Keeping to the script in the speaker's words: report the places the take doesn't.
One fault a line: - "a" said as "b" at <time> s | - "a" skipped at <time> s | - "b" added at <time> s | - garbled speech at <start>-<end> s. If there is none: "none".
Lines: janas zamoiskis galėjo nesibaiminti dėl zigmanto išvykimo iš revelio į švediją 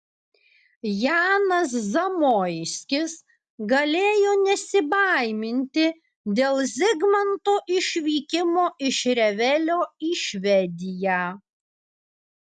none